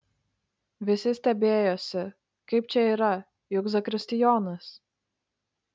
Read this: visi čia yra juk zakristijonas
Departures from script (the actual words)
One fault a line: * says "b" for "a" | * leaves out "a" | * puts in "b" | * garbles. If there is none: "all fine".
* puts in "stebėjosi kaip"